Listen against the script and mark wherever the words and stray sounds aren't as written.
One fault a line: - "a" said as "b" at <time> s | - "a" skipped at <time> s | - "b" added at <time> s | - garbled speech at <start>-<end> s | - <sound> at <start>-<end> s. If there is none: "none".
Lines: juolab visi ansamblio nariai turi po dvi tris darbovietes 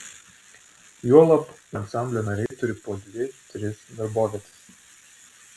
- "visi" skipped at 1.4 s
- dropout at 2.5-2.5 s